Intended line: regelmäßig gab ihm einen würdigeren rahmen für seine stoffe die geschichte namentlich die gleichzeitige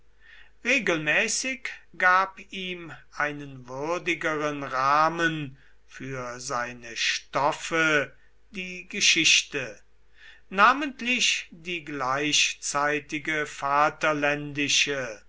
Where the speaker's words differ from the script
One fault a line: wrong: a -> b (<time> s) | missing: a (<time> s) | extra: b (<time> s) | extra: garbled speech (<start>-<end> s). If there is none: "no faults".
no faults